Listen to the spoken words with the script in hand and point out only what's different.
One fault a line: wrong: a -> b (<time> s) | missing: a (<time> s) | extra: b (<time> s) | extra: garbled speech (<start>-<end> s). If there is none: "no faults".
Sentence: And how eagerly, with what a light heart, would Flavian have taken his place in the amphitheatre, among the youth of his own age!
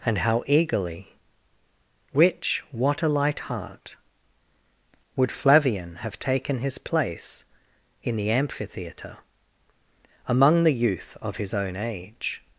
wrong: with -> which (2.1 s)